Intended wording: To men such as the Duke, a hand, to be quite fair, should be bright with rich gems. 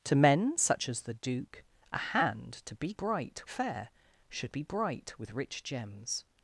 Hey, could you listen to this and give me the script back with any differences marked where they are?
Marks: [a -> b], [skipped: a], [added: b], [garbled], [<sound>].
To men such as the Duke, a hand, to be [quite -> bright] fair, should be bright with rich gems.